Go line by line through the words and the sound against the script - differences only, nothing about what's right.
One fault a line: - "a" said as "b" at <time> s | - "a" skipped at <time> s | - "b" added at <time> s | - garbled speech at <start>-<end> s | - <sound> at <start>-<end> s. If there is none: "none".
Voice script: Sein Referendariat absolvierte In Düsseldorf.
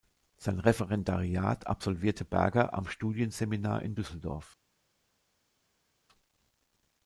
- "Berger am Studienseminar" added at 2.2 s